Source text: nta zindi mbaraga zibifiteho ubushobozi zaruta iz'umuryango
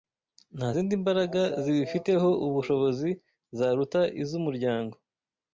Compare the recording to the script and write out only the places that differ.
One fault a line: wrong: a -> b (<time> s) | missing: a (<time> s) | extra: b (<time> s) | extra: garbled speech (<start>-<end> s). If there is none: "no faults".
no faults